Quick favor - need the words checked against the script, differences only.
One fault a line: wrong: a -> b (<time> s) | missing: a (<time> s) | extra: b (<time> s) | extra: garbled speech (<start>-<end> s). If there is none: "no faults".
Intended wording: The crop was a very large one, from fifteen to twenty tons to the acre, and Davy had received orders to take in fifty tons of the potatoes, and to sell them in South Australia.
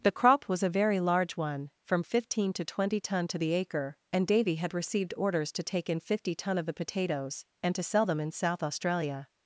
wrong: tons -> ton (3.0 s)
wrong: tons -> ton (6.3 s)